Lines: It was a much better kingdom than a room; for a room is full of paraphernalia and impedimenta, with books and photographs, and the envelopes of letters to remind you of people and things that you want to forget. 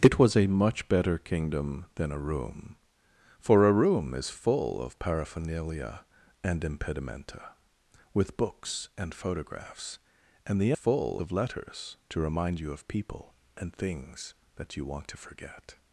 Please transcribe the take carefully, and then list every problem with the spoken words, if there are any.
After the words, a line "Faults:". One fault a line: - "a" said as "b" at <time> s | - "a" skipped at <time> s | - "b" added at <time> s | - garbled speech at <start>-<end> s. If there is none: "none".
It was a much better kingdom than a room; for a room is full of paraphernalia and impedimenta, with books and photographs, and the full of letters to remind you of people and things that you want to forget.
Faults:
- "envelopes" said as "full" at 10.7 s